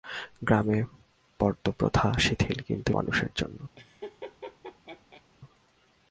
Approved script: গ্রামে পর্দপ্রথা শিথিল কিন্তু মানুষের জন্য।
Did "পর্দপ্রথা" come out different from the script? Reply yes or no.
no